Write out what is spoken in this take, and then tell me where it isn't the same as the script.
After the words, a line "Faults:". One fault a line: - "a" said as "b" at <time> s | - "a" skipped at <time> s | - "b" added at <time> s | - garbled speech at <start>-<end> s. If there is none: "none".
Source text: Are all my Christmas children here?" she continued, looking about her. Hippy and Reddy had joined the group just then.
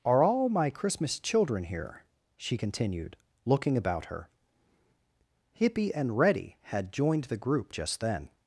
Are all my Christmas children here?" she continued, looking about her. Hippy and Reddy had joined the group just then.
Faults:
none